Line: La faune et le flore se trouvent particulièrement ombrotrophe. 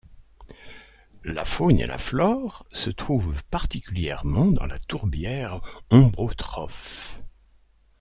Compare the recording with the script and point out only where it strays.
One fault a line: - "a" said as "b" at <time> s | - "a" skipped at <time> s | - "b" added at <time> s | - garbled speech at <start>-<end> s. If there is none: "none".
- "le" said as "la" at 1.9 s
- "dans la tourbière" added at 4.5 s